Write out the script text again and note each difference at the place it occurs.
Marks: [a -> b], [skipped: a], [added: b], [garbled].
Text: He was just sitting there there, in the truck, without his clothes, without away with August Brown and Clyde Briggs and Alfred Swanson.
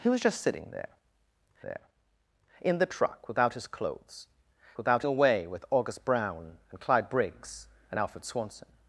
He was just sitting there there, in the truck, without his clothes, without away with August Brown and Clyde Briggs and Alfred Swanson.